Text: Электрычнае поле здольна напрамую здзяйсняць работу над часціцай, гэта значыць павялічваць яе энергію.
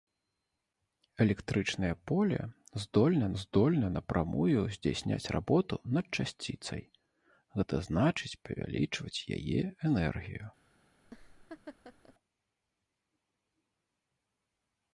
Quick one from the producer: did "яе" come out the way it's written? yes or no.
yes